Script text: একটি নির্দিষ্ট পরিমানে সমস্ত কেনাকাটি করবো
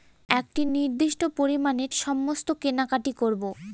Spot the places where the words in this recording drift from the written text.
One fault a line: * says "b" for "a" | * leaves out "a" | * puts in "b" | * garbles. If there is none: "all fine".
all fine